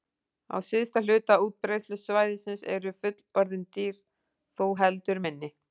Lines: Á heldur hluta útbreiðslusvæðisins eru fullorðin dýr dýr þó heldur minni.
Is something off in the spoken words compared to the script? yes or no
yes